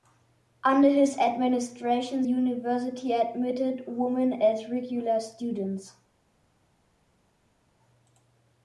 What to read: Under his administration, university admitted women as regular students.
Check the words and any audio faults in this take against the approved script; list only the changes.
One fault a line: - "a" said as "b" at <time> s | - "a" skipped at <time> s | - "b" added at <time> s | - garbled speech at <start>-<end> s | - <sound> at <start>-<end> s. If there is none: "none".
none